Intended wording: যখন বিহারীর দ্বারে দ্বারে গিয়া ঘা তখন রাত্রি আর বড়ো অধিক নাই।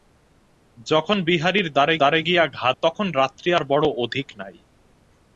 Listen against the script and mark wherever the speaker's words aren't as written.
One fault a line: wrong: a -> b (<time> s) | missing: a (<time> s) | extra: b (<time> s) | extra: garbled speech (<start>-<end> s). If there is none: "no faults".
no faults